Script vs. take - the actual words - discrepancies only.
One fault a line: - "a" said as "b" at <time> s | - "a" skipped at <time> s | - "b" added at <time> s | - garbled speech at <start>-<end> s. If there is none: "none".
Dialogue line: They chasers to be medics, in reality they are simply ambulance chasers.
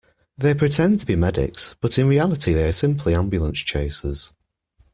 - "chasers" said as "pretend" at 0.6 s
- "but" added at 1.8 s